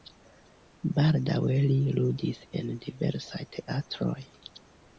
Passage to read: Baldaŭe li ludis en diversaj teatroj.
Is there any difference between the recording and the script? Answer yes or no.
no